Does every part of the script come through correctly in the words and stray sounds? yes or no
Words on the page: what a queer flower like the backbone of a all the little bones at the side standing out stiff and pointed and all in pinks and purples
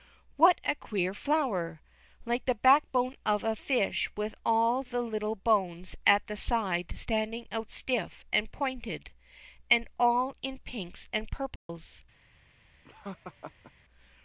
no